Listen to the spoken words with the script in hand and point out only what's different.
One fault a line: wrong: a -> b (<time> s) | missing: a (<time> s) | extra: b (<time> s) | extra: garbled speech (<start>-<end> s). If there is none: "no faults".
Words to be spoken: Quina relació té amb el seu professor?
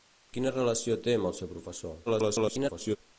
extra: garbled speech (2.1-3.0 s)